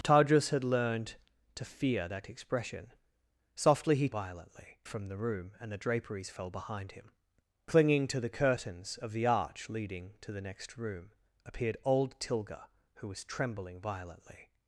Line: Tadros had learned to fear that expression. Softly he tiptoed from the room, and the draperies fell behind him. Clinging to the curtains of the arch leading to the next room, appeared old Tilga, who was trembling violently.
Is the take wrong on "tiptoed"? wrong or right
wrong